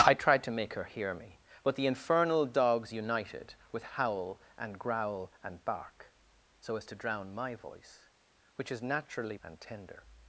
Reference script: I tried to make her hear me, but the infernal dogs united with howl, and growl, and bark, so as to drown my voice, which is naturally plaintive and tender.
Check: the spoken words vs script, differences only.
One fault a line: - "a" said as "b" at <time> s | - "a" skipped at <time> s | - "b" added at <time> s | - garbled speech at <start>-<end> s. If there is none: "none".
- "plaintive" skipped at 9.4 s